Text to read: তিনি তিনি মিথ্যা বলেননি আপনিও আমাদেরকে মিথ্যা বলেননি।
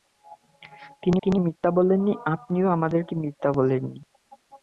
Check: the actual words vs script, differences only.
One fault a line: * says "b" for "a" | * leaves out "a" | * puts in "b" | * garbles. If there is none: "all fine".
all fine